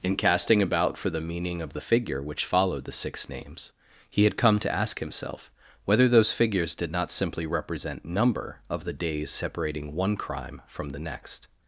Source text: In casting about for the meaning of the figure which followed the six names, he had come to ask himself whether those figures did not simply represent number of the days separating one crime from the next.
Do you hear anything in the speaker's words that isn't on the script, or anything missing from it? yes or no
no